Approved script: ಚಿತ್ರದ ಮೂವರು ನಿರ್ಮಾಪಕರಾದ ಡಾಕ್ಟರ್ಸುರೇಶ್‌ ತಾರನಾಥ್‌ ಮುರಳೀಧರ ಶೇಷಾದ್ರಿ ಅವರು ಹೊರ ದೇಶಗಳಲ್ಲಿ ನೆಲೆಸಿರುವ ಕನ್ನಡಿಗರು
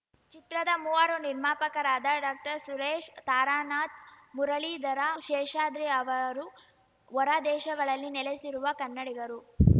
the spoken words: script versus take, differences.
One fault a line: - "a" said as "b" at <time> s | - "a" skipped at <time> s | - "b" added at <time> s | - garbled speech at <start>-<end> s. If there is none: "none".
none